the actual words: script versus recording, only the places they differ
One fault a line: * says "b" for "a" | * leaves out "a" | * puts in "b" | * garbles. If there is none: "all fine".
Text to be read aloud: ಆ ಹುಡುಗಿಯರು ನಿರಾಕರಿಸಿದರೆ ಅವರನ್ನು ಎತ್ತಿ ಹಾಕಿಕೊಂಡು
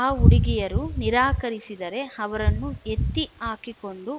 all fine